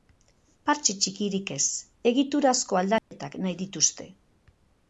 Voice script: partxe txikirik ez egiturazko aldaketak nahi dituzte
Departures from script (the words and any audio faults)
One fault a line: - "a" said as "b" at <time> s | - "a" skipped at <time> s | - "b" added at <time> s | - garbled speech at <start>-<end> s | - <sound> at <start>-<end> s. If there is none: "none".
- dropout at 3.0-3.1 s